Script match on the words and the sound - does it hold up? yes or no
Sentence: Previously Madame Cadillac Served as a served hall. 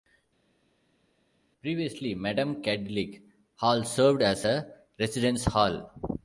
no